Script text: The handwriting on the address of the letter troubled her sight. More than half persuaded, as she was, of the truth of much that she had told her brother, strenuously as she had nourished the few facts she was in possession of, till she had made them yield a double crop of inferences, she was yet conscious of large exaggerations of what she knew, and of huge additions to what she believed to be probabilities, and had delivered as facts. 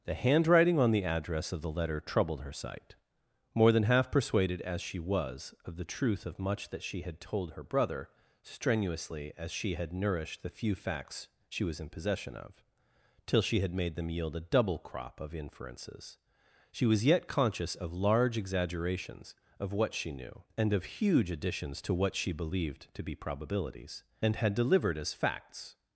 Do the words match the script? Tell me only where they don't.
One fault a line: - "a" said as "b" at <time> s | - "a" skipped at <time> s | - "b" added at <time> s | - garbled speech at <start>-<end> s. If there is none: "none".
none